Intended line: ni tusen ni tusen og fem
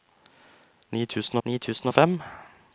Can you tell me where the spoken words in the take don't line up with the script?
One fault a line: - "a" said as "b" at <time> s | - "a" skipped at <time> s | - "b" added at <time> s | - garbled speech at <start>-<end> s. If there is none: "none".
none